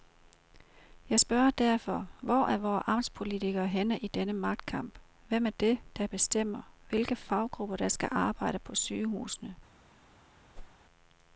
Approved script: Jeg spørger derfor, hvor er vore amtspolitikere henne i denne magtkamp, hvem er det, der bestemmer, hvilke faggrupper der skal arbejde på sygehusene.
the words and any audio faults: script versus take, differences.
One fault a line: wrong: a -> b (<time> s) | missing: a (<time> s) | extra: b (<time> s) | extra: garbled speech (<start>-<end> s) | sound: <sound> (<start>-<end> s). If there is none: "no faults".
sound: whoosh (10.5-10.8 s)